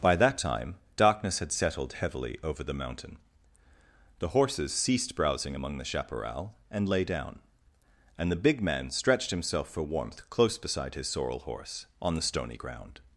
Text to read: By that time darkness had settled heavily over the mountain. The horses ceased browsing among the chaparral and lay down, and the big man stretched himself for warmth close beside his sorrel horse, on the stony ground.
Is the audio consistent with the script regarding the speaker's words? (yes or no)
yes